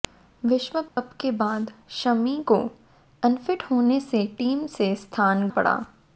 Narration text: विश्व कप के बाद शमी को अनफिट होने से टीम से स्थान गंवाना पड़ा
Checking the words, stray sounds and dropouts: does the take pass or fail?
fail